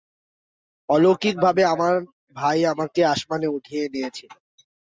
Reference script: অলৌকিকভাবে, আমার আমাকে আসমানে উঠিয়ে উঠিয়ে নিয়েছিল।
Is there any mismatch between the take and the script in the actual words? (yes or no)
yes